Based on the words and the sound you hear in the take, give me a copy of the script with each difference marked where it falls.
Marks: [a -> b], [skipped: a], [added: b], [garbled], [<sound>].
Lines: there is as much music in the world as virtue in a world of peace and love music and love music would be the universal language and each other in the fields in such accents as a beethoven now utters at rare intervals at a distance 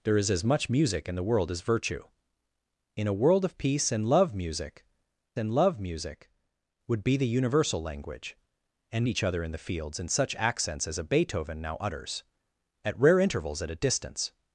there is as much music in the world as virtue in a world of peace and love music and love music would be the universal language and each other in the fields in such accents as a beethoven now utters at rare intervals at a distance